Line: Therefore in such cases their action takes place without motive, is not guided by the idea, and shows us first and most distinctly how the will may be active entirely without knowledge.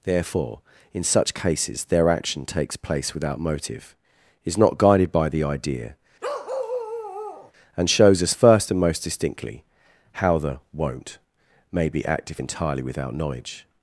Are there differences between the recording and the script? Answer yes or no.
yes